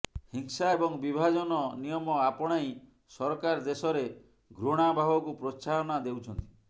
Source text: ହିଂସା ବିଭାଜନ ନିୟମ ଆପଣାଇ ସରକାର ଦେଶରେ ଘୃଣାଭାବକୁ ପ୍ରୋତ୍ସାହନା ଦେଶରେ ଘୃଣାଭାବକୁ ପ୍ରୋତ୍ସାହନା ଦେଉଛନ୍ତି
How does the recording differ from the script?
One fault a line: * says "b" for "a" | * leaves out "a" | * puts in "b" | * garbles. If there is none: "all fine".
* puts in "ଏବଂ"
* leaves out "ଦେଶରେ ଘୃଣାଭାବକୁ ପ୍ରୋତ୍ସାହନା"